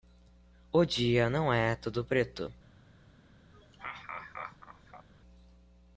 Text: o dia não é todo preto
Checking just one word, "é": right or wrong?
right